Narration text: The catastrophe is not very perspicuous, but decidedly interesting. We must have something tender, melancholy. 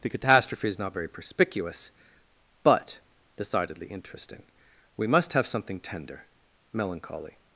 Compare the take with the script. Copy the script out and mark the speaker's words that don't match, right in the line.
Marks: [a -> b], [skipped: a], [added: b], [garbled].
The catastrophe is not very perspicuous, but decidedly interesting. We must have something tender, melancholy.